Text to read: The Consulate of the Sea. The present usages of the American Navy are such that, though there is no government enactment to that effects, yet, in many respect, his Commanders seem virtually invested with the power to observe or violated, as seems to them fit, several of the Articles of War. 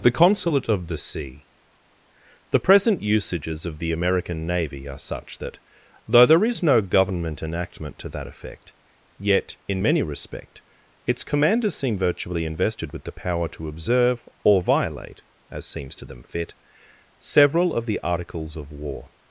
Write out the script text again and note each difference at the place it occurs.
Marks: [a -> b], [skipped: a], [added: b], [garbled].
The Consulate of the Sea. The present usages of the American Navy are such that, though there is no government enactment to that [effects, -> effect] yet, in many respect, [his -> its] Commanders seem virtually invested with the power to observe or [violated, -> violate] as seems to them fit, several of the Articles of War.